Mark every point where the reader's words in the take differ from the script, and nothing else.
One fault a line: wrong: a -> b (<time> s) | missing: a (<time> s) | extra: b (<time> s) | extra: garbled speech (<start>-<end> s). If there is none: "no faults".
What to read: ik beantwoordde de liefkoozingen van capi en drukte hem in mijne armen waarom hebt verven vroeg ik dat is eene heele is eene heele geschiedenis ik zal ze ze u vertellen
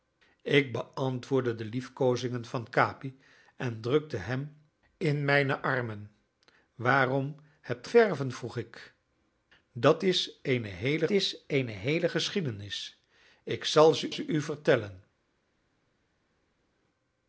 no faults